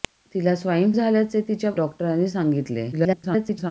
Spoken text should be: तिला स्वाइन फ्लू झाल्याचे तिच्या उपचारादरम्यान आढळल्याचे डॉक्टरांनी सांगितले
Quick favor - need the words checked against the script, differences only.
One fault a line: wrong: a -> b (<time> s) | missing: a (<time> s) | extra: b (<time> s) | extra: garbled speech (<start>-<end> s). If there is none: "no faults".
missing: फ्लू (0.9 s)
missing: उपचारादरम्यान आढळल्याचे (1.7 s)
extra: garbled speech (2.9-3.7 s)